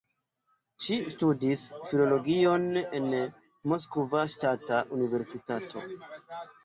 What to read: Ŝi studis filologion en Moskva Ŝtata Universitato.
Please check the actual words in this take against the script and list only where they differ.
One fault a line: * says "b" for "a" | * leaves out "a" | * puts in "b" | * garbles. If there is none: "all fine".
all fine